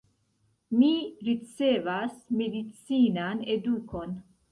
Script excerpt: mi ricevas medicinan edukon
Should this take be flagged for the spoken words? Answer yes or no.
no